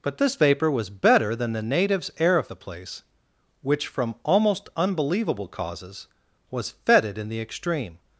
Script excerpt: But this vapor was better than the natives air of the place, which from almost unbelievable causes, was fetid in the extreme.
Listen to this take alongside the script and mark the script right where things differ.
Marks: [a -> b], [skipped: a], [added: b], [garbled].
But this vapor was better than the natives air of the place, which from almost unbelievable causes, was fetid in the extreme.